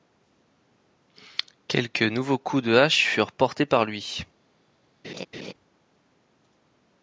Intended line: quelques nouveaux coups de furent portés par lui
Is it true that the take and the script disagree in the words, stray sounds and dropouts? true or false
true